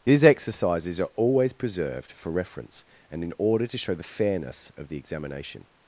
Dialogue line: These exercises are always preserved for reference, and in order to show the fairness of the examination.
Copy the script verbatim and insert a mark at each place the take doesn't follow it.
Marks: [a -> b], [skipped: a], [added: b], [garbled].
These exercises are always preserved for reference, and in order to show the fairness of the examination.